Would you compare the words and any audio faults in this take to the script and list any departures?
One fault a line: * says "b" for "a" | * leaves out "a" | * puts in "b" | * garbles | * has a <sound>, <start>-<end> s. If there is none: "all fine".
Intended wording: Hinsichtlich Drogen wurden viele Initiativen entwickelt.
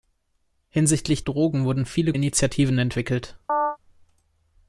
* has a chirp, 3.5-3.8 s